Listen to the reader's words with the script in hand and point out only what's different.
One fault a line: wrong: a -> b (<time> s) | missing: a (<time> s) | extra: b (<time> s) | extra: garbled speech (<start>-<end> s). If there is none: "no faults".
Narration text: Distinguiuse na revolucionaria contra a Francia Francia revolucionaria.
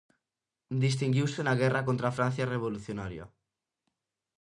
wrong: revolucionaria -> guerra (1.6 s)
missing: Francia (2.5 s)